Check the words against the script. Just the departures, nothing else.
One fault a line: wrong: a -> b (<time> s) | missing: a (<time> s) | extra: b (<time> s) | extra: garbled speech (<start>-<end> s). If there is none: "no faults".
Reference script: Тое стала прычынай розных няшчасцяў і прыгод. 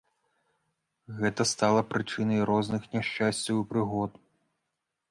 wrong: Тое -> Гэта (1.2 s)